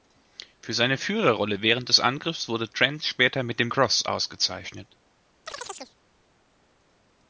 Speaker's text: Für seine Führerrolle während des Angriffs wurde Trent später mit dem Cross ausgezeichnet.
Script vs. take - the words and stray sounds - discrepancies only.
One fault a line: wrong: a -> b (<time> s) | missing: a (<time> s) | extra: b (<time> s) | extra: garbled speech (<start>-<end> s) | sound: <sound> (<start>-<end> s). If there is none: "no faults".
sound: chirp (5.5-6.0 s)